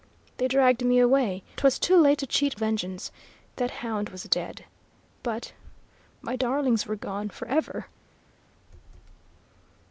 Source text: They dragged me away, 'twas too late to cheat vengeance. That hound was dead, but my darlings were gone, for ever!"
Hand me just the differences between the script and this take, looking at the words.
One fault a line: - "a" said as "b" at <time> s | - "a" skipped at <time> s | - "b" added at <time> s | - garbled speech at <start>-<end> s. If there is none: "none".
none